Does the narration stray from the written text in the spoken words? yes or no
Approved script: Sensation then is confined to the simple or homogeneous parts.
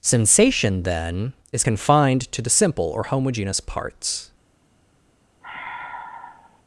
no